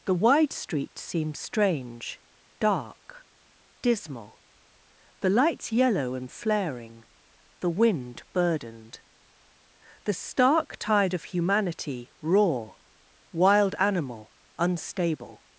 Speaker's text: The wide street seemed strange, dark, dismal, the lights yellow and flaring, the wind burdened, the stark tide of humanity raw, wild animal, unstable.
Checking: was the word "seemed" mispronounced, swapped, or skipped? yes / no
no